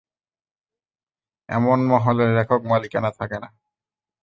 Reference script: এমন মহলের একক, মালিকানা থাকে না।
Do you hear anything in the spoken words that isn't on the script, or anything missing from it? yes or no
no